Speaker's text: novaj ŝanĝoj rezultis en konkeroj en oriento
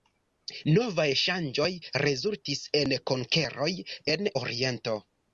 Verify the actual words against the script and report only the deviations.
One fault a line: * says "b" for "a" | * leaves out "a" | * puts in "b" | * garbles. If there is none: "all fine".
all fine